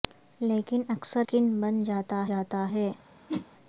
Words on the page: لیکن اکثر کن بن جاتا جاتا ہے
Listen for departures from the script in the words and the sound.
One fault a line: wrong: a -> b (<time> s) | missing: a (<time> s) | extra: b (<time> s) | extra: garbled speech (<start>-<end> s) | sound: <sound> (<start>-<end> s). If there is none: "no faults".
sound: whoosh (3.3-3.5 s)